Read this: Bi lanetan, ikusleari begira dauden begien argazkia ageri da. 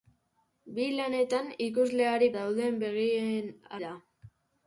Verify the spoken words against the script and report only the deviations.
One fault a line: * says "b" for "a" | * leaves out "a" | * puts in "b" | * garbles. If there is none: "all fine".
* leaves out "begira"
* leaves out "argazkia ageri"